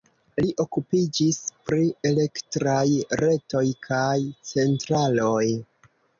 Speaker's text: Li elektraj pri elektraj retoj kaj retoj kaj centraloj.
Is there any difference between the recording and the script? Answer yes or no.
yes